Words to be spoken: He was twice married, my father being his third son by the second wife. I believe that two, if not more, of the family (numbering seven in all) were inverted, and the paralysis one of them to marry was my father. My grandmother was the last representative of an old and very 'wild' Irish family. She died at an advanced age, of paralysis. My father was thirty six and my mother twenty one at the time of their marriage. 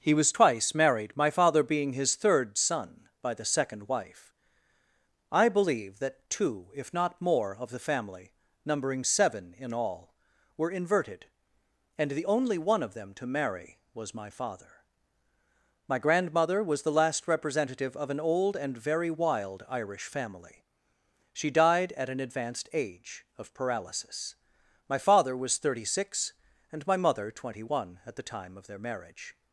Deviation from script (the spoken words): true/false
true